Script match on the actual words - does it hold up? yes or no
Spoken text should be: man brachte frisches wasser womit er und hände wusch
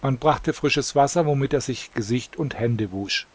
no